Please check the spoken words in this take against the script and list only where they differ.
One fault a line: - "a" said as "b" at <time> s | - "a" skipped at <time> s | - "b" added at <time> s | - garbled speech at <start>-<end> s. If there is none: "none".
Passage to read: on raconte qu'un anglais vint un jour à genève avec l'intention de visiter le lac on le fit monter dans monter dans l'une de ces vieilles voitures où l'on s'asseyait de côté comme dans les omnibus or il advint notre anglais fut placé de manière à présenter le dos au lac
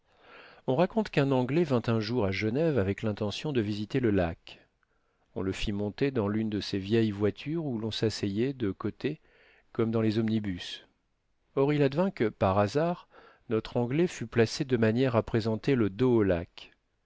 - "monter dans" skipped at 6.3 s
- "que par hasard" added at 12.1 s